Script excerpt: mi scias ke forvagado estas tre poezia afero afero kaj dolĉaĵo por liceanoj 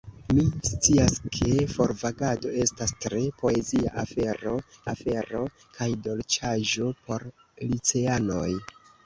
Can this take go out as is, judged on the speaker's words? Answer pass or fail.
pass